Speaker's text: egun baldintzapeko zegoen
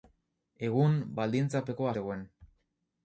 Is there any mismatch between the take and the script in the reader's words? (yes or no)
no